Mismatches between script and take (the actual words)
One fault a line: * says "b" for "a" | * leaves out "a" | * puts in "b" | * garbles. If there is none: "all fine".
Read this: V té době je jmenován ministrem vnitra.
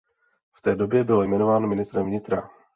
* says "byl" for "je"